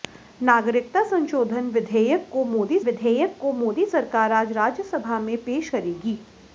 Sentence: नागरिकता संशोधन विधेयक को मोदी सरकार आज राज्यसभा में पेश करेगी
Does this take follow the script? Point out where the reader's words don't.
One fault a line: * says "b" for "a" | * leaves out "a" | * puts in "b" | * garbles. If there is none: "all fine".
* puts in "विधेयक को मोदी"